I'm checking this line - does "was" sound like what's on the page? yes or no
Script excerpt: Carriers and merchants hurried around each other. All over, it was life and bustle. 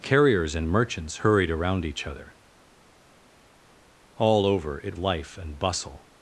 no